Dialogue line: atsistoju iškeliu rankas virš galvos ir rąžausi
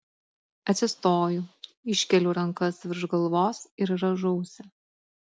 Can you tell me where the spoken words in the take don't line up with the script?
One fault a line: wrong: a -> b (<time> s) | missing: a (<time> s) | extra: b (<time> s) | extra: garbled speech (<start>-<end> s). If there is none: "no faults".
no faults